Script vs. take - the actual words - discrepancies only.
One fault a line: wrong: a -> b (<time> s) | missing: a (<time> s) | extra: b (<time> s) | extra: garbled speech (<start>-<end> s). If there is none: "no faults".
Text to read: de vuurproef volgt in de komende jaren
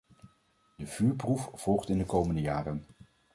no faults